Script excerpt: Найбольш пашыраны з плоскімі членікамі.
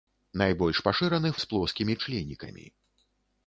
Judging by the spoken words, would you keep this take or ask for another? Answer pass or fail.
pass